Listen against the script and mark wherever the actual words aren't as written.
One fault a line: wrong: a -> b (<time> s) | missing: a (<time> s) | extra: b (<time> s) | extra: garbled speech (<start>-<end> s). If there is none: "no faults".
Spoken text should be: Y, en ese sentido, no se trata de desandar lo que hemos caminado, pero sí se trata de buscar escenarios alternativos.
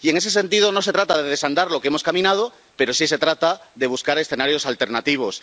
no faults